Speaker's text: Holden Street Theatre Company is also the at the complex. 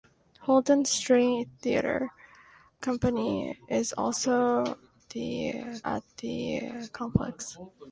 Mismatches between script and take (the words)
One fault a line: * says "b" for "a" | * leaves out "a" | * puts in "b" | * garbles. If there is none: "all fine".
all fine